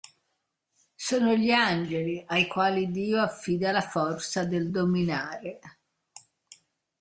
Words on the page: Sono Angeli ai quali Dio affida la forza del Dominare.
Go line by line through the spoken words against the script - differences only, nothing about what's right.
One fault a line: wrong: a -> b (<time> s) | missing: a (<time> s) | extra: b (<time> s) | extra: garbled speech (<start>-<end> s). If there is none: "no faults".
extra: gli (1.4 s)